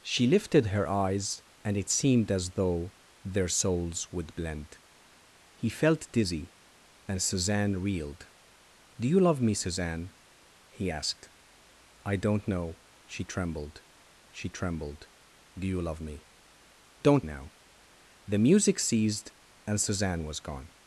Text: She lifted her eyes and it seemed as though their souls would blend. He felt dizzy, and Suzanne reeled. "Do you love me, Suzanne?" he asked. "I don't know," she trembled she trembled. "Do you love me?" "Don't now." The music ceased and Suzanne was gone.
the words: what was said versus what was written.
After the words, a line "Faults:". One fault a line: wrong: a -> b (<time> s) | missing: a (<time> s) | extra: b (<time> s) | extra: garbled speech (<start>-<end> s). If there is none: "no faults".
She lifted her eyes and it seemed as though their souls would blend. He felt dizzy, and Suzanne reeled. "Do you love me, Suzanne?" he asked. "I don't know," she trembled she trembled. "Do you love me?" "Don't now." The music ceased and Suzanne was gone.
Faults:
no faults